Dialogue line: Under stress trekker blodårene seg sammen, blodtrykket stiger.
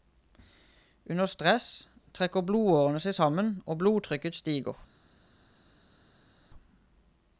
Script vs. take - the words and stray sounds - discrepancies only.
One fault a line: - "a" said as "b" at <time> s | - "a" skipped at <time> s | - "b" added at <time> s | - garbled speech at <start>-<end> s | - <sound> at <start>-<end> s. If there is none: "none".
- "og" added at 3.6 s